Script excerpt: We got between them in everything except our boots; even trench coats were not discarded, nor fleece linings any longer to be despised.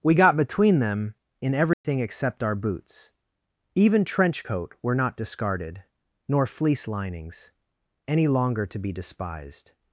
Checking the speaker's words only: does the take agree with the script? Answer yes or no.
no